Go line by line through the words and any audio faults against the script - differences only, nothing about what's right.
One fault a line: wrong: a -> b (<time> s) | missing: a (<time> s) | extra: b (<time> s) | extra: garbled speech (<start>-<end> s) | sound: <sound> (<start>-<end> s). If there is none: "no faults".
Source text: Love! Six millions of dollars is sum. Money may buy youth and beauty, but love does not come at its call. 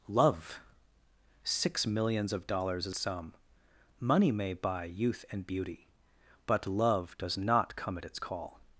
no faults